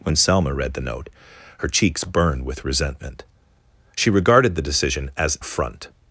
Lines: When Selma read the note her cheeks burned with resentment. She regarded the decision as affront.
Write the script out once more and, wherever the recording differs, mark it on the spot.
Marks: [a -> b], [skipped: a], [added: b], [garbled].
When Selma read the note her cheeks burned with resentment. She regarded the decision as affront.